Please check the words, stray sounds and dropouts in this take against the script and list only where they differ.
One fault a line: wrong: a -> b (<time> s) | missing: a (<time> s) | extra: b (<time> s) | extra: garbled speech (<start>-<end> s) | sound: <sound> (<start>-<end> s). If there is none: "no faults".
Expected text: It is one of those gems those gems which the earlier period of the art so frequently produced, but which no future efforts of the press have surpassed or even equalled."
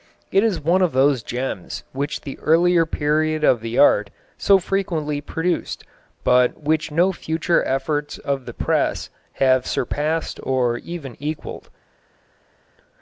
missing: those gems (1.8 s)